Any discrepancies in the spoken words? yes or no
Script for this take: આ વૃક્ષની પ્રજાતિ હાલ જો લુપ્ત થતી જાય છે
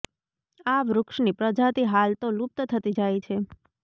yes